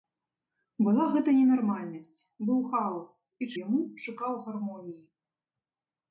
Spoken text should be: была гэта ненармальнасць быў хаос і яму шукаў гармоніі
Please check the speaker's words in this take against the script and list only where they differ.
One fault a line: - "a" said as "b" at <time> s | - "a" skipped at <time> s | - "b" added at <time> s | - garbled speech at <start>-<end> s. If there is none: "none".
none